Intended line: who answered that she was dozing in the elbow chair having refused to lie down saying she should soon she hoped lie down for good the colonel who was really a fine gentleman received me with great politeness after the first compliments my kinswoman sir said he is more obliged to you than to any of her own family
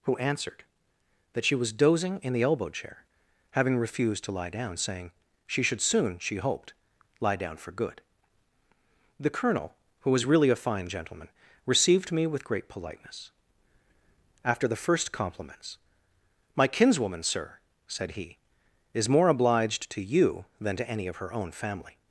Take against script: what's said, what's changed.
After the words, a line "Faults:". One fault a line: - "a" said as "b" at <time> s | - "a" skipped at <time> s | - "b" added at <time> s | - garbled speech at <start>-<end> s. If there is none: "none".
who answered that she was dozing in the elbow chair having refused to lie down saying she should soon she hoped lie down for good the colonel who was really a fine gentleman received me with great politeness after the first compliments my kinswoman sir said he is more obliged to you than to any of her own family
Faults:
none